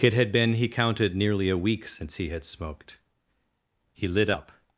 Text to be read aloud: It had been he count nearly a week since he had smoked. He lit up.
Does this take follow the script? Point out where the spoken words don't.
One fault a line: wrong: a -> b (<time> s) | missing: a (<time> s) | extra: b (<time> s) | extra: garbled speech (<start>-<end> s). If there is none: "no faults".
wrong: count -> counted (0.7 s)